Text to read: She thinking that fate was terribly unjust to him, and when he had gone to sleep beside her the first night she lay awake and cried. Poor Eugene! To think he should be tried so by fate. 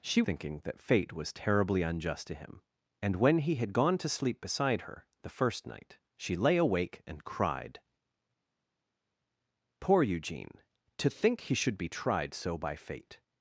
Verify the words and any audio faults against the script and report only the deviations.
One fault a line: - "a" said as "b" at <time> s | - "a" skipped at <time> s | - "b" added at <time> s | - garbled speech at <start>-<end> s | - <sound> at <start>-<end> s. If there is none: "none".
none